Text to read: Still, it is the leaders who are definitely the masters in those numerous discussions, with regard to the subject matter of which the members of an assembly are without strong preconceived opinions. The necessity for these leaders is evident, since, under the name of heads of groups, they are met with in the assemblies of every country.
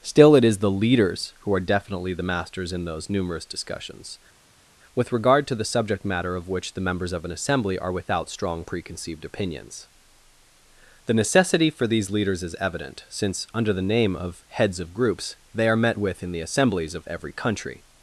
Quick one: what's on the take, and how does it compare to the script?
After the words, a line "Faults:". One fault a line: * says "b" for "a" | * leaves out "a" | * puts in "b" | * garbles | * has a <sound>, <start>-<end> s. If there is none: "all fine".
Still, it is the leaders who are definitely the masters in those numerous discussions, with regard to the subject matter of which the members of an assembly are without strong preconceived opinions. The necessity for these leaders is evident, since, under the name of heads of groups, they are met with in the assemblies of every country.
Faults:
all fine